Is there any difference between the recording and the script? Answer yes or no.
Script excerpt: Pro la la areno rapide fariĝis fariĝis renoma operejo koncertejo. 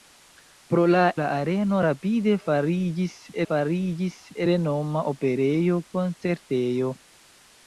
no